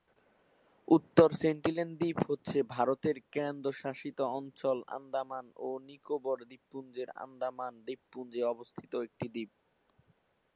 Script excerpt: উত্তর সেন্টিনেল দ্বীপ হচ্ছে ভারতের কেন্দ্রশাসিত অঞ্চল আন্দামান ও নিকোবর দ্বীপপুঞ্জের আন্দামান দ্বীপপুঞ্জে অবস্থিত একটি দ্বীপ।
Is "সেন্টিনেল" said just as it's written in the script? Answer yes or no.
yes